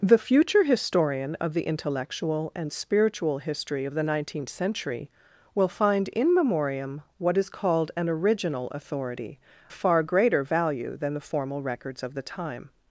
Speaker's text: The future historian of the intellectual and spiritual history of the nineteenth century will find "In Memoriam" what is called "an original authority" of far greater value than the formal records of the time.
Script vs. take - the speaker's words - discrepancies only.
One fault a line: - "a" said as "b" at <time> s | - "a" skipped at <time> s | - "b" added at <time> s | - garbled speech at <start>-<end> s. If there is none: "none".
- "of" skipped at 9.4 s